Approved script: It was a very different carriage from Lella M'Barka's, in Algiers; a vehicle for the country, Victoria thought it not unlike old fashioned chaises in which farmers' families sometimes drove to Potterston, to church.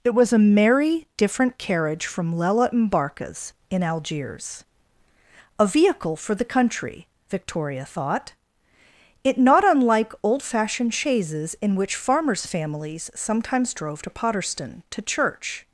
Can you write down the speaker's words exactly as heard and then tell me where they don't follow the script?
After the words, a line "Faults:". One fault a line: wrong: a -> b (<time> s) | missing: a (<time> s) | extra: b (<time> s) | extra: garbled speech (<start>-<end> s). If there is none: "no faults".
It was a merry different carriage from Lella M'Barka's, in Algiers; a vehicle for the country, Victoria thought it not unlike old fashioned chaises in which farmers' families sometimes drove to Potterston, to church.
Faults:
wrong: very -> merry (0.4 s)